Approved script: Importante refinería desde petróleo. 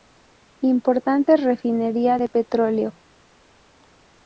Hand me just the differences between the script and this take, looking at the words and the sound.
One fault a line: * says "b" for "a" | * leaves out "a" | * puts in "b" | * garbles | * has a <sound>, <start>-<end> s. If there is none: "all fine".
* says "de" for "desde"